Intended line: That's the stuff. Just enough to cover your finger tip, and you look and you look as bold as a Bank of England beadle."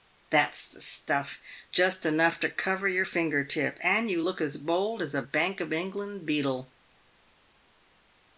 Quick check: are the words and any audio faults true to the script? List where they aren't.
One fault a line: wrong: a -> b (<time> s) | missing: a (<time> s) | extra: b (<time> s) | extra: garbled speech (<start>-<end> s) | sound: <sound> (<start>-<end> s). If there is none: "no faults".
missing: and you look (4.4 s)